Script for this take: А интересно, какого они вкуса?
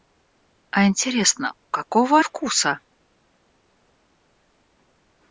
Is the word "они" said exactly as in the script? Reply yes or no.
no